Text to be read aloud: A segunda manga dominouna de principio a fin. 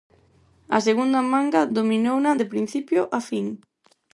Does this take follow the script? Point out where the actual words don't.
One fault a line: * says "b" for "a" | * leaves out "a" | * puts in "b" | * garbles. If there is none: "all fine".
all fine